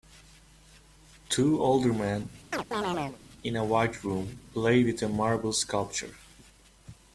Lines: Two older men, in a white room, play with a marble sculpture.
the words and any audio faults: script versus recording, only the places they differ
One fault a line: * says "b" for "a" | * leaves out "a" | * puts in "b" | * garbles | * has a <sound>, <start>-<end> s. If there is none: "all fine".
* has a chirp, 2.5-3.2 s